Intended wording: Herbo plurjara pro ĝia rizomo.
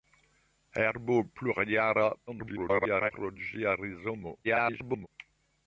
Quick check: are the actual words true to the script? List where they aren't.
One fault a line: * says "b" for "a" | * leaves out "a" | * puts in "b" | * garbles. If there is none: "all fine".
* garbles
* garbles